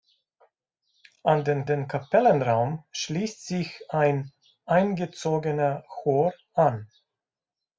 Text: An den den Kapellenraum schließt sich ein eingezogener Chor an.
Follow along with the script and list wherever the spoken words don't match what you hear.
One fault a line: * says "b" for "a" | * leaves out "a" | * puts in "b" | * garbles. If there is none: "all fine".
all fine